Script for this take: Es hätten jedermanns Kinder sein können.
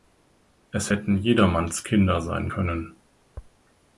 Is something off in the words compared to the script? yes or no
no